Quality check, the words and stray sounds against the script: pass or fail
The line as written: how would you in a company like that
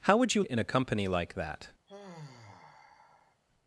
fail